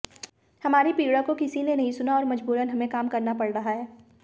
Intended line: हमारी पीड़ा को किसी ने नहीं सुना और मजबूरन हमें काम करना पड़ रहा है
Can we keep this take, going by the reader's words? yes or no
yes